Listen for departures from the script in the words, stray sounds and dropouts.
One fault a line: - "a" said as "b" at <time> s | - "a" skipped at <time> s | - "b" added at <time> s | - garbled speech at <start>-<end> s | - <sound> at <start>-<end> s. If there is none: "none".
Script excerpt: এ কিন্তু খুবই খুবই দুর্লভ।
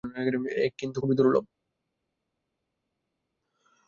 - "খুবই" skipped at 1.2 s